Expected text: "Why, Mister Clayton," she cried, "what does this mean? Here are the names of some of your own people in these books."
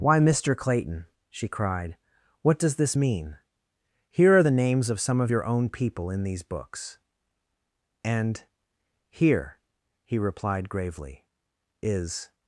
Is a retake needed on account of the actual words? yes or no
yes